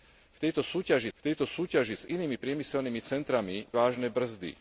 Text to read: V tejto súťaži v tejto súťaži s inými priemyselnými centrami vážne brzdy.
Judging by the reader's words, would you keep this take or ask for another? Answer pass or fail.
pass